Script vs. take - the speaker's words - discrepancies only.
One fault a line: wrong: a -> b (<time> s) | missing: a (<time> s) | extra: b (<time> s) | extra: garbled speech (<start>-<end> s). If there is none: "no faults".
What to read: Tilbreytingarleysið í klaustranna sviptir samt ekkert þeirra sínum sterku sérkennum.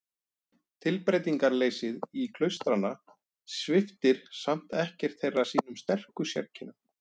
no faults